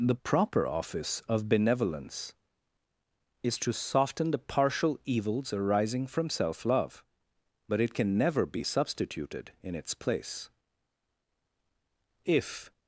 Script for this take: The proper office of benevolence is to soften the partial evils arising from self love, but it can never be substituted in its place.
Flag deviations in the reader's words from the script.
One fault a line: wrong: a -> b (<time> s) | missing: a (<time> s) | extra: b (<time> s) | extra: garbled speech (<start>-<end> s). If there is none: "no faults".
extra: If (12.2 s)